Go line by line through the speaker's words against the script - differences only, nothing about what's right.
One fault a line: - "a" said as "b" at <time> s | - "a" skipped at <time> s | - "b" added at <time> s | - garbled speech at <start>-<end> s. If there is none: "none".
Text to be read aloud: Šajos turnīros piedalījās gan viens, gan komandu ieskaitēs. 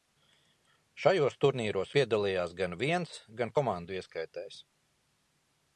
none